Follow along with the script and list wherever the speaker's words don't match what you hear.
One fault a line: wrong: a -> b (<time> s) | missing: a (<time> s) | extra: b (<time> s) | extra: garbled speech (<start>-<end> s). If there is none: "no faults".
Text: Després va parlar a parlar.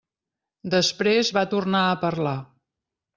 wrong: parlar -> tornar (1.5 s)